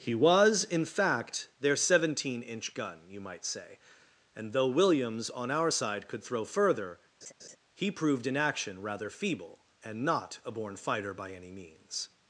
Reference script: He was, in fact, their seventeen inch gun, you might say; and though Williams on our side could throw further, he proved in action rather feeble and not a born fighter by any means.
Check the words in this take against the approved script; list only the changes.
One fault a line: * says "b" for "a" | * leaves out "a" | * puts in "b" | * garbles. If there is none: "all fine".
all fine